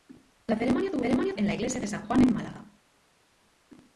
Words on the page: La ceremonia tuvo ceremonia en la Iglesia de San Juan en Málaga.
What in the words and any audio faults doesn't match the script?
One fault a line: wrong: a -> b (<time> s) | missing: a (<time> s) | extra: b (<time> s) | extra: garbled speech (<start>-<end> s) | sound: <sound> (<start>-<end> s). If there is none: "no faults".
no faults